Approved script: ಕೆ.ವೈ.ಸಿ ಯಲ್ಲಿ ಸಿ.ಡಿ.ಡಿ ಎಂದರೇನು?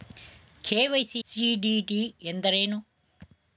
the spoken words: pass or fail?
fail